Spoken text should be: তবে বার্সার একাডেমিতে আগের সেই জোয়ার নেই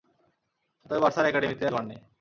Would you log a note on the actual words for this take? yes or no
yes